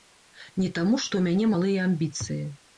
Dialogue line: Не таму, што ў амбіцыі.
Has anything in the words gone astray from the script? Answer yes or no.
yes